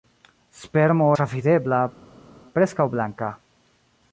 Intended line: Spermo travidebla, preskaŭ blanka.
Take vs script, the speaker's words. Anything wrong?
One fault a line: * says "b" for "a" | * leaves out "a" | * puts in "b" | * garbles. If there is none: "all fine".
all fine